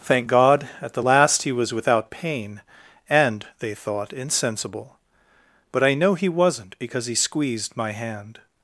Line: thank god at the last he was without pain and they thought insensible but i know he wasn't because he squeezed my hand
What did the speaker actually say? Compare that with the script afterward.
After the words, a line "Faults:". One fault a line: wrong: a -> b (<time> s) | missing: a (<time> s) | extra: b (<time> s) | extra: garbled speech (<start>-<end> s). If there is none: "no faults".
thank god at the last he was without pain and they thought insensible but i know he wasn't because he squeezed my hand
Faults:
no faults